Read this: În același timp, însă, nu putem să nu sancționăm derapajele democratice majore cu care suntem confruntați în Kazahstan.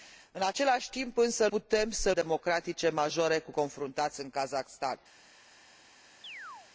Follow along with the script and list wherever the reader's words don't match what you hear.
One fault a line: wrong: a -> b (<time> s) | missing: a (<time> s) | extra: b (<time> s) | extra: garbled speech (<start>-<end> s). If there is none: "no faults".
missing: nu (1.5 s)
missing: nu sancționăm derapajele (2.1 s)
missing: care suntem (3.5 s)